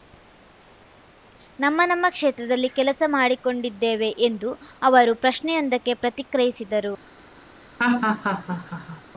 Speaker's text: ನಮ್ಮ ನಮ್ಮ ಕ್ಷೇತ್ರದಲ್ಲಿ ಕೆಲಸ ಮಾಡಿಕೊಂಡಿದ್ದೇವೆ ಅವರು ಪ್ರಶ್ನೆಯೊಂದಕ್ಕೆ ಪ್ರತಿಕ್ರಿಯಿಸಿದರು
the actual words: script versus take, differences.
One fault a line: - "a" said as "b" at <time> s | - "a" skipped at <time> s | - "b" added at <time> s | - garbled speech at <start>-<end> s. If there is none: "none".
- "ಎಂದು" added at 4.2 s